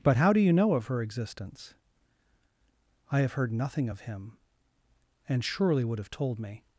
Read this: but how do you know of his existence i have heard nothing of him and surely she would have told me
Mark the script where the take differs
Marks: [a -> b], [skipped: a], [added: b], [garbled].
but how do you know of [his -> her] existence i have heard nothing of him and surely [skipped: she] would have told me